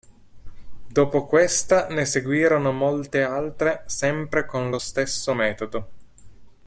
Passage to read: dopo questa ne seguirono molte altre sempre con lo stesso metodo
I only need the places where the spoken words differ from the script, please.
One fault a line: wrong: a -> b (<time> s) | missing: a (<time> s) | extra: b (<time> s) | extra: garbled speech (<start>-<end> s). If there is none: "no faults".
no faults